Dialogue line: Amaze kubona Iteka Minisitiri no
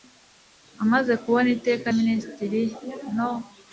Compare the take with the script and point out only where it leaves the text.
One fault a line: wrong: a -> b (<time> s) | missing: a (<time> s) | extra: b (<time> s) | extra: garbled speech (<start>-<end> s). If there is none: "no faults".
no faults